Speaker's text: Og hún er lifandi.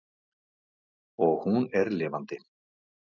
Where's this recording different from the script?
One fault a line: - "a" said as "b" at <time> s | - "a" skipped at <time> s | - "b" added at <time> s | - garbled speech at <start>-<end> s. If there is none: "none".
none